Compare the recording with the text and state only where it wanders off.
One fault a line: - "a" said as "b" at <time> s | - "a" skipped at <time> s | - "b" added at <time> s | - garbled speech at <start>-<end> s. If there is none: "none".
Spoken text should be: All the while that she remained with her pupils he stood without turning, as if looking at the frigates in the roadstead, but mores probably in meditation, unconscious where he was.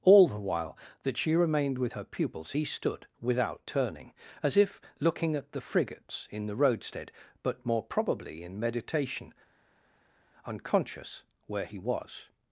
- "mores" said as "more" at 7.7 s